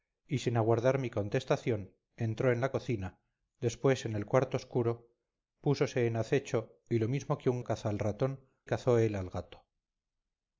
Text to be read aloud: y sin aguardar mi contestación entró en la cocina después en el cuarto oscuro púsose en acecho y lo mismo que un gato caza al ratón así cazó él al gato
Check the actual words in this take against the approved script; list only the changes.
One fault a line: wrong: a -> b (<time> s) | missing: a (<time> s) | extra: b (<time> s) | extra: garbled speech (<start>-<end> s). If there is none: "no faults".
missing: gato (7.6 s)
missing: así (8.4 s)